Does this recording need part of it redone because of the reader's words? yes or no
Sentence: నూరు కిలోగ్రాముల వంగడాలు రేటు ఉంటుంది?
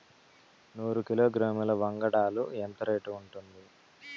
yes